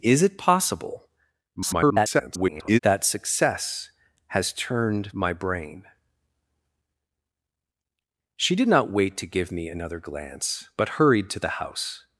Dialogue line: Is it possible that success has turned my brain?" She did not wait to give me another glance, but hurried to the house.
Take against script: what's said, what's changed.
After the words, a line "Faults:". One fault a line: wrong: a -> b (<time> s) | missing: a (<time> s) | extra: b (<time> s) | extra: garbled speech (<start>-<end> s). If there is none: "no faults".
Is it possible [garbled] that success has turned my brain?" She did not wait to give me another glance, but hurried to the house.
Faults:
extra: garbled speech (1.6-2.8 s)